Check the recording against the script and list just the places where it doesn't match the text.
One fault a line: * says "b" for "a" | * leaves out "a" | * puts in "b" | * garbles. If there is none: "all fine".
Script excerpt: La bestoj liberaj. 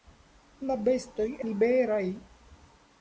all fine